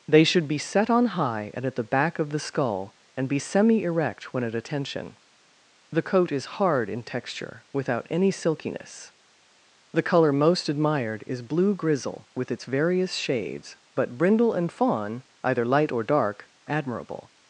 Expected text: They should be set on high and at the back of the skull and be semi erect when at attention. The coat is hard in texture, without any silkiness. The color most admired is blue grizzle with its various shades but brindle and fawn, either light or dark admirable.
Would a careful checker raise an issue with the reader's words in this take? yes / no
no